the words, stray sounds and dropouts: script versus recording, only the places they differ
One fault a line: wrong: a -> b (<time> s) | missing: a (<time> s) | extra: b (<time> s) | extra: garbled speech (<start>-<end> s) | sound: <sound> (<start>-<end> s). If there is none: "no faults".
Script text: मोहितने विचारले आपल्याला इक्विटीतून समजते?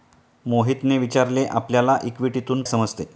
no faults